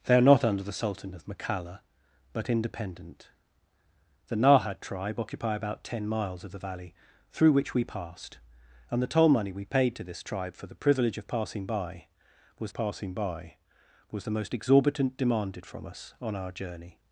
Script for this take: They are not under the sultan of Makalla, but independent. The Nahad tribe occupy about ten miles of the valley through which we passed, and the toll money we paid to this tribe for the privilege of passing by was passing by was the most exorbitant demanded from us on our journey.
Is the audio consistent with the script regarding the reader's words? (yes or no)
yes